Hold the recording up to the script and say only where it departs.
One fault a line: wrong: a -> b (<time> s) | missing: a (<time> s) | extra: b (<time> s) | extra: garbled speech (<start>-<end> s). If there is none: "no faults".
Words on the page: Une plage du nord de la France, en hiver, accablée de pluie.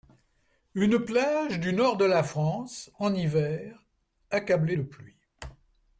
no faults